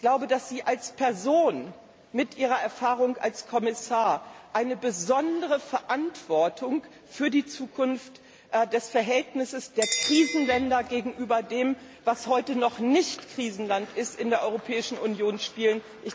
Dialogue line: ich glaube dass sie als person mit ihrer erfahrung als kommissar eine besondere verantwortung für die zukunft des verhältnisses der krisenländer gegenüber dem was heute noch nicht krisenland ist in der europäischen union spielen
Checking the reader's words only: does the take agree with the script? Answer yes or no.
yes